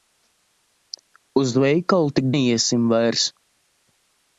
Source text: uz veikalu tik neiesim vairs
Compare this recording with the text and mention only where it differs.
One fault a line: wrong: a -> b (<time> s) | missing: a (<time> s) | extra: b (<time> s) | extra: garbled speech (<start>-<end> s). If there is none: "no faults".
no faults